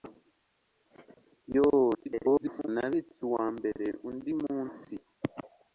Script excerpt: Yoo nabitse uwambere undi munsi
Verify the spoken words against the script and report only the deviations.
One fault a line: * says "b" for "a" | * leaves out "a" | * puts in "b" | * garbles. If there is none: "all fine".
* garbles